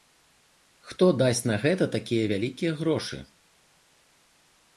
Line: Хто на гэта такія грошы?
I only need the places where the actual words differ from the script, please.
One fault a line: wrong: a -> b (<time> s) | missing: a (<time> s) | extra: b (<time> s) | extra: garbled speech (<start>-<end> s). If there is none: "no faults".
extra: дасць (1.2 s)
extra: вялікія (2.3 s)